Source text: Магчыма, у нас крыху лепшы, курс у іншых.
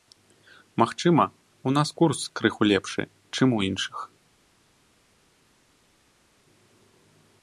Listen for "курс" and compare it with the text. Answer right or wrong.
wrong